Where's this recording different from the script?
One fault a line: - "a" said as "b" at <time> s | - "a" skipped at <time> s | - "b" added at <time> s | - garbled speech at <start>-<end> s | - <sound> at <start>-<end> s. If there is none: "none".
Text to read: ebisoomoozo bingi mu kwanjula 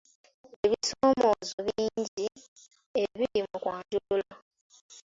- "ebiri" added at 3.0 s